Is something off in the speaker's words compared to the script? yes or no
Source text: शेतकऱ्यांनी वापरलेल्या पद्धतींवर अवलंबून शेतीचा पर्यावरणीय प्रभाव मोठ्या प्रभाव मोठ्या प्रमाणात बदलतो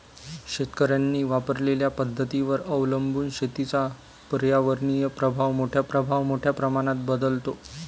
no